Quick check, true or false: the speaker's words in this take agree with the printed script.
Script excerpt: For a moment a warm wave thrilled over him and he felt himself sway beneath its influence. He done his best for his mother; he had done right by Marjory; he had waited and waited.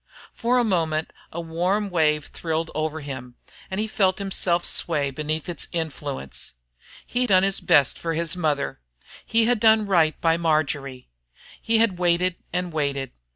true